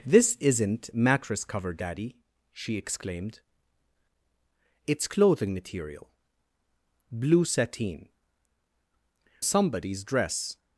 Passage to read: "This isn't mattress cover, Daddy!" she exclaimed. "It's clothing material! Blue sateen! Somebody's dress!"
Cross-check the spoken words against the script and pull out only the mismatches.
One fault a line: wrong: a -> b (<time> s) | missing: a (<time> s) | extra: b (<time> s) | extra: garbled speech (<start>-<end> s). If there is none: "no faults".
no faults